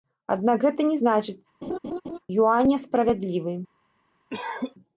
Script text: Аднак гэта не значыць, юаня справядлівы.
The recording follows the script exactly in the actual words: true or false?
true